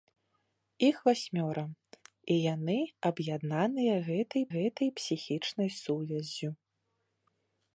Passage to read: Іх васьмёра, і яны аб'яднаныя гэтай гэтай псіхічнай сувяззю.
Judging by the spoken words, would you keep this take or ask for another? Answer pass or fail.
pass